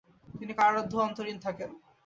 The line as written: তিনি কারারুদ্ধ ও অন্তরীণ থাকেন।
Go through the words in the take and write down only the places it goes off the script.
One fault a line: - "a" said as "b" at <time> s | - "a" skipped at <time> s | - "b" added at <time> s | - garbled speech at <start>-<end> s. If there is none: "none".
none